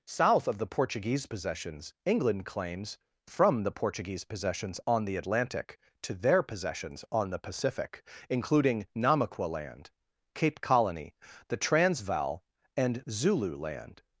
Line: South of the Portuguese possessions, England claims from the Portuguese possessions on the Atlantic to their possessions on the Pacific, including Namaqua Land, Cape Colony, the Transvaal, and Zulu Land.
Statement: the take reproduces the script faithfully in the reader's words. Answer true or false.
true